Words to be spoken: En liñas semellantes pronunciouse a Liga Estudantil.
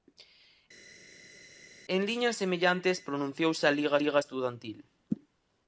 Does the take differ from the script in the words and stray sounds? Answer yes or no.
yes